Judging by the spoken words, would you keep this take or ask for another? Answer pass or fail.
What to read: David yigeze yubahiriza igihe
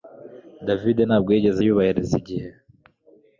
fail